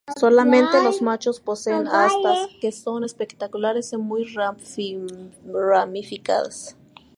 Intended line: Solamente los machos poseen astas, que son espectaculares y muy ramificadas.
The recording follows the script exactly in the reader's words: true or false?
true